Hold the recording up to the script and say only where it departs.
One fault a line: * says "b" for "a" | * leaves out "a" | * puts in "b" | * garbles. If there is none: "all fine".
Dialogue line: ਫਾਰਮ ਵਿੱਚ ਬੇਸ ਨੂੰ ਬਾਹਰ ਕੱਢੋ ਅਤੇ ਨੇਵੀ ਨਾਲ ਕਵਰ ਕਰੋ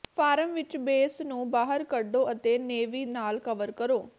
all fine